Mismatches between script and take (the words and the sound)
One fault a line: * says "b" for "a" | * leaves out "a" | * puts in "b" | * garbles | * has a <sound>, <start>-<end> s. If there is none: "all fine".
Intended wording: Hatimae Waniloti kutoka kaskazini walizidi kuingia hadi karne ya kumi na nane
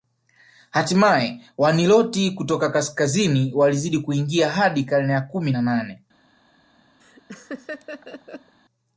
* has a laugh, 7.0-8.5 s